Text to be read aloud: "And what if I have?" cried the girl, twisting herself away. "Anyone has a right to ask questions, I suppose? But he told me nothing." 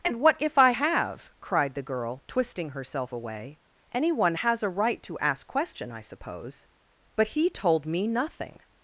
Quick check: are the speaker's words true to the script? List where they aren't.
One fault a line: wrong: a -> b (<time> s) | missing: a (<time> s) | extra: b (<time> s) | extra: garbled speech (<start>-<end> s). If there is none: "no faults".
wrong: questions -> question (5.5 s)